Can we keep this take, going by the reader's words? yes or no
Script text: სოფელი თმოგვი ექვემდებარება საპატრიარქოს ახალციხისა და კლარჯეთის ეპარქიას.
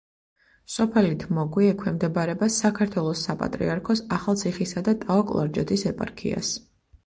no